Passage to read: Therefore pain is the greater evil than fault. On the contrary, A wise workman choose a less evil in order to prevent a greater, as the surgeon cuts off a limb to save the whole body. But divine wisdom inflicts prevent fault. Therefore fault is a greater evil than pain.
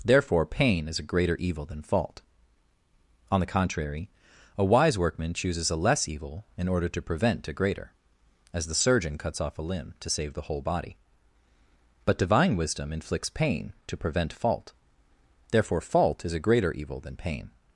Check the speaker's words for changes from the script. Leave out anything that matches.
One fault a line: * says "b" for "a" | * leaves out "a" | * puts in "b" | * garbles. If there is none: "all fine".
* says "a" for "the"
* says "chooses" for "choose"
* puts in "pain to"